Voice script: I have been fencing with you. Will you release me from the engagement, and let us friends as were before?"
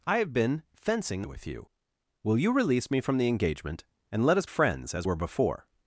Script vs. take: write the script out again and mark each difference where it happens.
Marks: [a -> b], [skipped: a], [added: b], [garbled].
I have been fencing with you. Will you release me from the engagement, and let us friends as were before?"